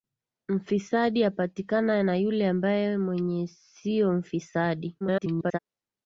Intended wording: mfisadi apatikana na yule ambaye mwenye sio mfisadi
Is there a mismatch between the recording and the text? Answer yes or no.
yes